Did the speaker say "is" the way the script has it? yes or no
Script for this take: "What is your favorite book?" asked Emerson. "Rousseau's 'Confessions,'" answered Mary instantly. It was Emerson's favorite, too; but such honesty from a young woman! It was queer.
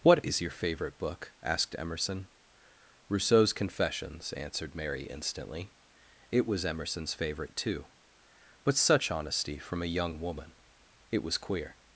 yes